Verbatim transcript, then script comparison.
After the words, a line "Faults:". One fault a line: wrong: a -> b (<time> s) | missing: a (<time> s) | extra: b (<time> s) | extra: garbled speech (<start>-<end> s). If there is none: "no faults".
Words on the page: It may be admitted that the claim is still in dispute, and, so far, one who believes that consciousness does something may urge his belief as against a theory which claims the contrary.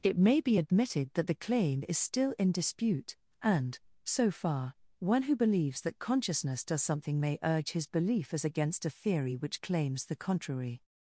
It may be admitted that the claim is still in dispute, and, so far, one who believes that consciousness does something may urge his belief as against a theory which claims the contrary.
Faults:
no faults